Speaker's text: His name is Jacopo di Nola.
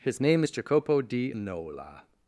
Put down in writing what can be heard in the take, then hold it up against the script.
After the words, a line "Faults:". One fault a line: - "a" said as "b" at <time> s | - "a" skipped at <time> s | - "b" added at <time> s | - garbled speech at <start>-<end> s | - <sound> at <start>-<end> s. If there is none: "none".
His name is Jacopo di Nola.
Faults:
none